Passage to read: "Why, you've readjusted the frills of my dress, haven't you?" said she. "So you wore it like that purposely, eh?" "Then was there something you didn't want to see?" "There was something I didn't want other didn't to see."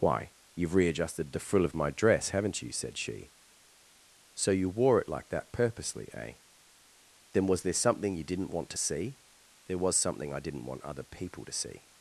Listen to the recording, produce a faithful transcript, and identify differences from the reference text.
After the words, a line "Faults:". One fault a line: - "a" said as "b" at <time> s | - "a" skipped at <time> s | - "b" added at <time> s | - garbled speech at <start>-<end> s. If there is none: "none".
"Why, you've readjusted the frill of my dress, haven't you?" said she. "So you wore it like that purposely, eh?" "Then was there something you didn't want to see?" "There was something I didn't want other people to see."
Faults:
- "frills" said as "frill" at 1.4 s
- "didn't" said as "people" at 11.0 s